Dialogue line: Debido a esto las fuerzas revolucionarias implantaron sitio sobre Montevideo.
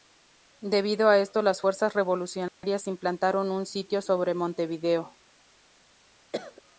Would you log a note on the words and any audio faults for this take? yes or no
yes